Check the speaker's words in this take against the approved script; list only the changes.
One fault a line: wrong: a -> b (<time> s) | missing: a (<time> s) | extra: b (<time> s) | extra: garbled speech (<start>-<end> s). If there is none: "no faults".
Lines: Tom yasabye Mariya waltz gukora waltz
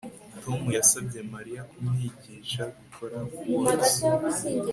wrong: waltz -> kumwigisha (1.7 s)